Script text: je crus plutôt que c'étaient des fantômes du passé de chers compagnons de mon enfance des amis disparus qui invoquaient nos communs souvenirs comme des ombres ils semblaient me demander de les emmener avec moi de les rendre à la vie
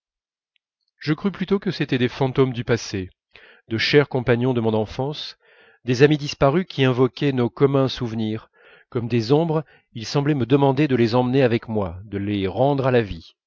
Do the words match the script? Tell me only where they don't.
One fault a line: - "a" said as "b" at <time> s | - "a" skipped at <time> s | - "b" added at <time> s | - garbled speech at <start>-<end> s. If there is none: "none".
none